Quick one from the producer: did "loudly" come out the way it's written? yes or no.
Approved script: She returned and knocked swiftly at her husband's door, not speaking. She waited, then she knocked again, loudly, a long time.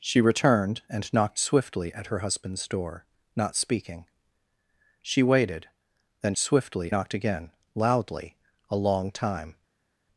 yes